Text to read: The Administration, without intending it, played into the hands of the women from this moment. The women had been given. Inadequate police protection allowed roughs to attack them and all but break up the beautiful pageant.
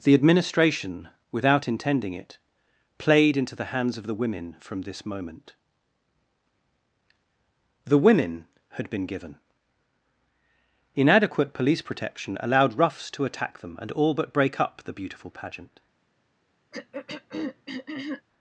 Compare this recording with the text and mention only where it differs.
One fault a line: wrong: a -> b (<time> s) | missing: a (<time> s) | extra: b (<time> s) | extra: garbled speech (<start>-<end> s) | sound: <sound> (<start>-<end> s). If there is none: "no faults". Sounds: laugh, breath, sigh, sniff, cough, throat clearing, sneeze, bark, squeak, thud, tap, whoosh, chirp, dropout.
sound: throat clearing (16.7-18.2 s)